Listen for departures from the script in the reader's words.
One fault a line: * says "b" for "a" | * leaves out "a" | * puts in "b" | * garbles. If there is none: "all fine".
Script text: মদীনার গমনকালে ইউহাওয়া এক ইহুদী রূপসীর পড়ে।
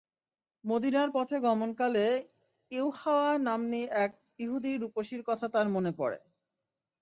* puts in "পথে"
* puts in "নাম্নী"
* puts in "কথা তার মনে"